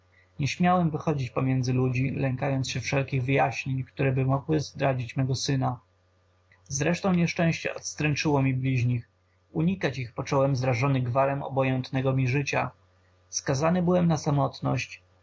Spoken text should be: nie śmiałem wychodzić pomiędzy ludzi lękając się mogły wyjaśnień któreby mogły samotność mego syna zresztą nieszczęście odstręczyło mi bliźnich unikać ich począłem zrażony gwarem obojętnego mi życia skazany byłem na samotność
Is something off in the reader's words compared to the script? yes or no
yes